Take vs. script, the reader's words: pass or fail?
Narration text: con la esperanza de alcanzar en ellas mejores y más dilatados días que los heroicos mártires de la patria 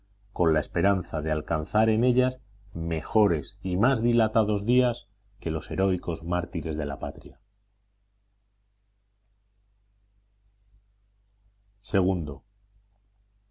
pass